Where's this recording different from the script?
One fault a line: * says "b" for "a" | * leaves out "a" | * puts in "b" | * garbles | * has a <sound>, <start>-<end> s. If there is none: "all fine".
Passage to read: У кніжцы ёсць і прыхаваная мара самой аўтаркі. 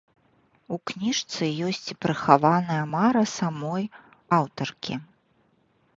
all fine